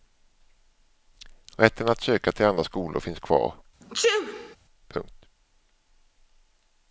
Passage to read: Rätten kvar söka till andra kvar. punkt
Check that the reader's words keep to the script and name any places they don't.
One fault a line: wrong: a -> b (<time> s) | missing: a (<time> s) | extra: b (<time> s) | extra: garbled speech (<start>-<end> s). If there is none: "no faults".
wrong: kvar -> att (1.9 s)
extra: skolor finns (2.6 s)